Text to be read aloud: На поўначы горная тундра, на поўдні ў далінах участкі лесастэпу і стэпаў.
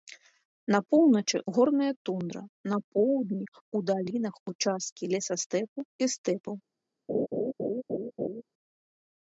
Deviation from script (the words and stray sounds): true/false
true